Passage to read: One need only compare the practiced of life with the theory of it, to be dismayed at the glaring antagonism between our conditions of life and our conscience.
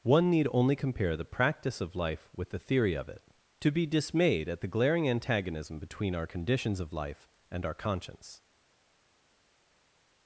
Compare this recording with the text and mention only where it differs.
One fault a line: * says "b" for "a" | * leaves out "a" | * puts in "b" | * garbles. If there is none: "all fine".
* says "practice" for "practiced"